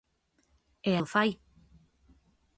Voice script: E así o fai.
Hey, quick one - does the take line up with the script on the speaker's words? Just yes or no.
no